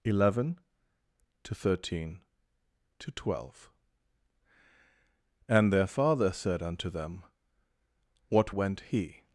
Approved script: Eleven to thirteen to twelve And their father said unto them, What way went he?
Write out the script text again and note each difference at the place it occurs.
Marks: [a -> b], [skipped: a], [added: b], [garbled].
Eleven to thirteen to twelve And their father said unto them, What [skipped: way] went he?